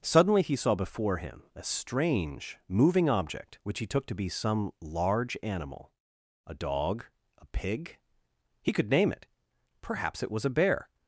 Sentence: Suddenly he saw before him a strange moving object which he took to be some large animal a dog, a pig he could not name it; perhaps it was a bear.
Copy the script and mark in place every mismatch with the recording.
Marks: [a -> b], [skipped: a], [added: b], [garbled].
Suddenly he saw before him a strange moving object which he took to be some large animal a dog, a pig he could [skipped: not] name it; perhaps it was a bear.